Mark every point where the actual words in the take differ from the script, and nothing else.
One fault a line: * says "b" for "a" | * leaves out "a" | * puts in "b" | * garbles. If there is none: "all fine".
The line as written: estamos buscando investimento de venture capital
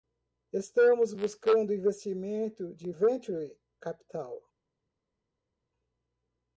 all fine